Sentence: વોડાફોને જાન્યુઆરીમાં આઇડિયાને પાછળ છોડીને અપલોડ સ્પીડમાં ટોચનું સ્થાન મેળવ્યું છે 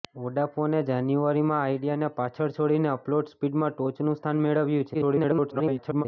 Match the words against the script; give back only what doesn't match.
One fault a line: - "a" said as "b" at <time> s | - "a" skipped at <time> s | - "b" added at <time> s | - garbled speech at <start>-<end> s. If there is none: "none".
- garbled speech at 4.9-6.0 s